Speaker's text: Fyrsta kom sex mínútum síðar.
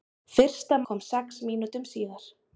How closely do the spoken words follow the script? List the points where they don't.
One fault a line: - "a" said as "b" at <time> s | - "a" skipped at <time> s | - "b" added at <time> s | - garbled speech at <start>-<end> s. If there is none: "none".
none